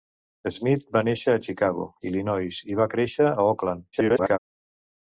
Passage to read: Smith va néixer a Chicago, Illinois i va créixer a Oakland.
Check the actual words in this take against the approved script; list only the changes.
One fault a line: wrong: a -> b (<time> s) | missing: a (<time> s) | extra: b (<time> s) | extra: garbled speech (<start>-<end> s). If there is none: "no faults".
extra: garbled speech (3.9-4.4 s)